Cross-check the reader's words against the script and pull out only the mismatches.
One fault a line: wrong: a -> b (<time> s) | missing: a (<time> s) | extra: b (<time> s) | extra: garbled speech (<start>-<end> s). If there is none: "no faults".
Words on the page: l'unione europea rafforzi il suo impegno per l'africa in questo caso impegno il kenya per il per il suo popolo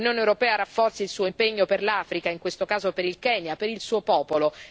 wrong: impegno -> per (2.9 s)
missing: per il (3.8 s)